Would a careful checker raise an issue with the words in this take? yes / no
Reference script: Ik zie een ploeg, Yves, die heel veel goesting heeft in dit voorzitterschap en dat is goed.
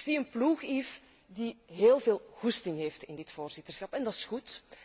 no